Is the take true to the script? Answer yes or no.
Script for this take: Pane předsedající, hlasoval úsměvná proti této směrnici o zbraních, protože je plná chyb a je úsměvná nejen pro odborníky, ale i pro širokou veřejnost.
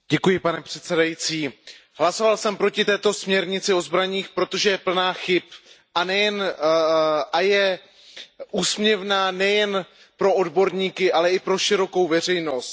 no